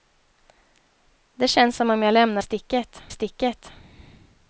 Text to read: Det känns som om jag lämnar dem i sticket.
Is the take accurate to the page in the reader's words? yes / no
no